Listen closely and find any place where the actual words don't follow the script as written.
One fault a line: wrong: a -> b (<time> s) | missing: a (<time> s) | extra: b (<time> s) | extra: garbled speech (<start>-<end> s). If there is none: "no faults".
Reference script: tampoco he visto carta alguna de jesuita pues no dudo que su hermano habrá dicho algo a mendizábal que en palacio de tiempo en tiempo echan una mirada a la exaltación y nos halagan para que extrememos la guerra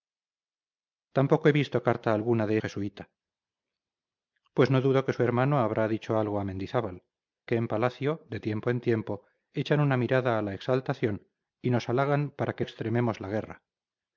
no faults